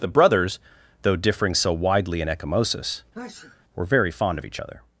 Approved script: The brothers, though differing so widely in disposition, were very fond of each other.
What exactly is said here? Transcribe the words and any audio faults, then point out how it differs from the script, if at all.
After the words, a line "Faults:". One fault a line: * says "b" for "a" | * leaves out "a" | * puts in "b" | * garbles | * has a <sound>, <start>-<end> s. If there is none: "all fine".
The brothers, though differing so widely in ecchymosis, were very fond of each other.
Faults:
* says "ecchymosis" for "disposition"
* has a sneeze, 3.1-3.6 s